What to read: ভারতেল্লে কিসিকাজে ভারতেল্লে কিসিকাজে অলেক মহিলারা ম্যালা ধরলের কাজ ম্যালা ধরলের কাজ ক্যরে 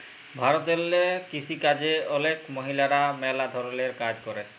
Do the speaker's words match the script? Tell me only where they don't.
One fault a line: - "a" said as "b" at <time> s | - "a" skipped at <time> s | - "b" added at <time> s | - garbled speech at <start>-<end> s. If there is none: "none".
- "ভারতেল্লে কিসিকাজে" skipped at 1.9 s
- "ম্যালা ধরলের কাজ" skipped at 4.2 s